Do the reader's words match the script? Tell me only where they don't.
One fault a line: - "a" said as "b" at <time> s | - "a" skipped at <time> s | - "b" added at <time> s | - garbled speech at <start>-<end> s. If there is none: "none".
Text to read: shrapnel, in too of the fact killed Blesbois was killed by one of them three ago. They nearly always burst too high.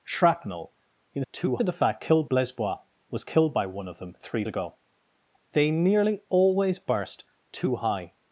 none